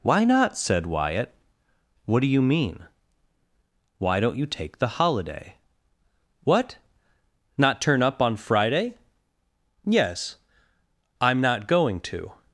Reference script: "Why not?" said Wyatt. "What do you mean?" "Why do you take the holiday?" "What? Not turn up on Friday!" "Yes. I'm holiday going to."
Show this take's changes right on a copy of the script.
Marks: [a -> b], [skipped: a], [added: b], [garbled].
"Why not?" said Wyatt. "What do you mean?" "Why [do -> don't] you take the holiday?" "What? Not turn up on Friday!" "Yes. I'm [holiday -> not] going to."